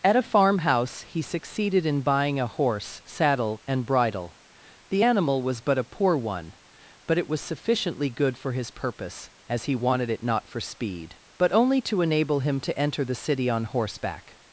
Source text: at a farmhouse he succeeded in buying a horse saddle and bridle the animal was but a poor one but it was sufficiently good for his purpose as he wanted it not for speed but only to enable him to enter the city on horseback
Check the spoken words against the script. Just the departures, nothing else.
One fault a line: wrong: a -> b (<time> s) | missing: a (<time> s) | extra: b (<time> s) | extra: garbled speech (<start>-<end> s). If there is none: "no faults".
no faults